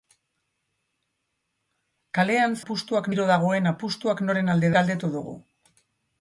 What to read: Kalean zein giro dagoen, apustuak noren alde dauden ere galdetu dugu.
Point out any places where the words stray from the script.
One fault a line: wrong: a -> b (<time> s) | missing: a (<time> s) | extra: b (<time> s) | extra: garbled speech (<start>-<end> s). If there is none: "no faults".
wrong: zein -> apustuak (2.6 s)
missing: dauden ere (4.8 s)